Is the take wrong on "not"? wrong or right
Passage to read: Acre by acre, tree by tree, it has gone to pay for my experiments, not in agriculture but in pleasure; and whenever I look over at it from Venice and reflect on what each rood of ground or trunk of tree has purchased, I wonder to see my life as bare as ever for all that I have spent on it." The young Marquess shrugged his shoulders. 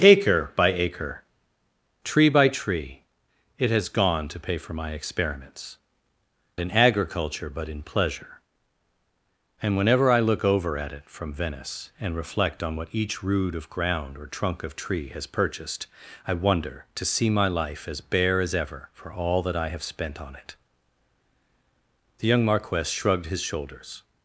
wrong